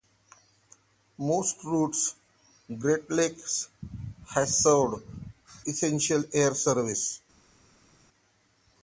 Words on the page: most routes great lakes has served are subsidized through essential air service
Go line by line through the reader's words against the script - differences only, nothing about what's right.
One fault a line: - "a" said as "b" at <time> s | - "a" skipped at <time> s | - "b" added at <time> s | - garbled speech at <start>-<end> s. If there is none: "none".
- "are subsidized through" skipped at 5.0 s